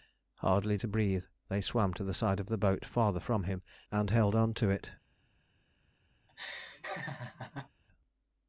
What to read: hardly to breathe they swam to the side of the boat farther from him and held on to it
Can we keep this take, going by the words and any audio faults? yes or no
no